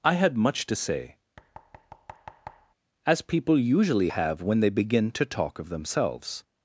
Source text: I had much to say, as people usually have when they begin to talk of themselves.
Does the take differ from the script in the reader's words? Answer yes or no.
no